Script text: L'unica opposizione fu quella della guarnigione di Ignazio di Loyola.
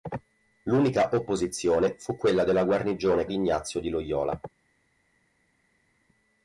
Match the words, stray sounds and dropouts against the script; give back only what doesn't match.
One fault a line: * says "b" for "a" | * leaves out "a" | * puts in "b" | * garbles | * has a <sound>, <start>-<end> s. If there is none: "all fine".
all fine